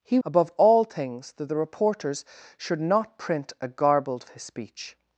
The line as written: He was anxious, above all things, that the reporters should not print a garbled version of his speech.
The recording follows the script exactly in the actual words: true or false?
false